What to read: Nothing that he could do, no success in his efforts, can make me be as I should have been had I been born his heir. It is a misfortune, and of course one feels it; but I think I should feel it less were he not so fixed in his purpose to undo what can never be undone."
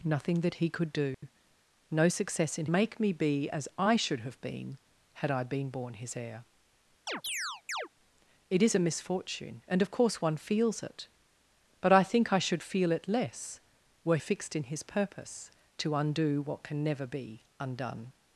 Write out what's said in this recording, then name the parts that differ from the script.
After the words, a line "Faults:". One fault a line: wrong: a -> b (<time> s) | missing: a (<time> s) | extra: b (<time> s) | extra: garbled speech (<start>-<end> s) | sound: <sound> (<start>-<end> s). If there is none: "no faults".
Nothing that he could do, no success in make me be as I should have been had I been born his heir. It is a misfortune, and of course one feels it; but I think I should feel it less were fixed in his purpose to undo what can never be undone."
Faults:
sound: dropout (1.1-1.2 s)
missing: his efforts can (2.7 s)
sound: chirp (7.1-7.9 s)
missing: he not so (14.2 s)